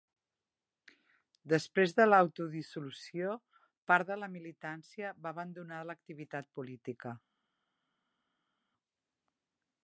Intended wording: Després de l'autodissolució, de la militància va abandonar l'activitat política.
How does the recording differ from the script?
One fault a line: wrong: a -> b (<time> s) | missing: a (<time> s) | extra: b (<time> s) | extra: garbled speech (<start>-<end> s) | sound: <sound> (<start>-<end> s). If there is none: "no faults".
extra: part (3.9 s)